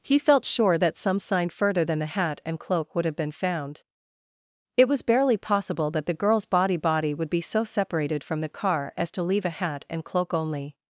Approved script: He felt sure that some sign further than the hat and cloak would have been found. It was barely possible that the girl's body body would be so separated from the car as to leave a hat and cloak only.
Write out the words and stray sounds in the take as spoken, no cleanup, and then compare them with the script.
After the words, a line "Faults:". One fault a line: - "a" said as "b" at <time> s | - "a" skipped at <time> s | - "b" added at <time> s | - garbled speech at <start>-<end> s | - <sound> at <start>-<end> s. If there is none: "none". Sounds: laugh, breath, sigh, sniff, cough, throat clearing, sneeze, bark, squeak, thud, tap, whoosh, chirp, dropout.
He felt sure that some sign further than the hat and cloak would have been found. It was barely possible that the girl's body body would be so separated from the car as to leave a hat and cloak only.
Faults:
none